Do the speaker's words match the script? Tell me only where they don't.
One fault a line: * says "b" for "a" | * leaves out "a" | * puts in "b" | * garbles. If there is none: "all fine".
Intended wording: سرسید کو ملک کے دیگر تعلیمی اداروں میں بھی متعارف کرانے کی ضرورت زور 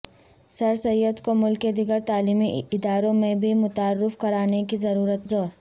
all fine